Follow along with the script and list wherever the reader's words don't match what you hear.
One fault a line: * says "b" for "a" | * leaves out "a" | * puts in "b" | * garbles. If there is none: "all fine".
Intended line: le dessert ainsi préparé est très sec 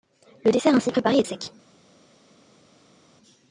* leaves out "très"